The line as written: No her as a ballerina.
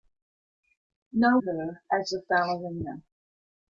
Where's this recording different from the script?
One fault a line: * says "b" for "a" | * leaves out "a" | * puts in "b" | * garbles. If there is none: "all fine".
all fine